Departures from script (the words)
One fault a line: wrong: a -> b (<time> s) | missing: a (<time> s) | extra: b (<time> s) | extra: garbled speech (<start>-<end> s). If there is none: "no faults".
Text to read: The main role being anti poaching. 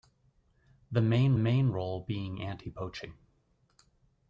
extra: main (1.3 s)